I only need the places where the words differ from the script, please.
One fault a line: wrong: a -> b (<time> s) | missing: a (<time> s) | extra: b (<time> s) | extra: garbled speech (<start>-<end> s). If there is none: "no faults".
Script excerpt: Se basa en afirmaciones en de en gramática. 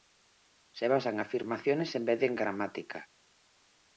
extra: vez (2.0 s)